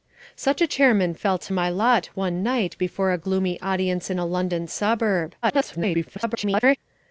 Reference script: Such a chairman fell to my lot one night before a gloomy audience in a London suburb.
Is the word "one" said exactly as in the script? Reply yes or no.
yes